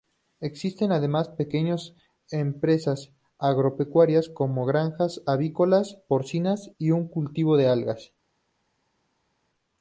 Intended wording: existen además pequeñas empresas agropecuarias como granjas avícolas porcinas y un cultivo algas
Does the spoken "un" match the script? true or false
true